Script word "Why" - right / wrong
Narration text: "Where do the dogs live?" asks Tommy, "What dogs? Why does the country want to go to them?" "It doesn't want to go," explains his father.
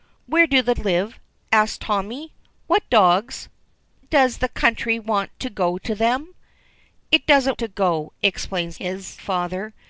wrong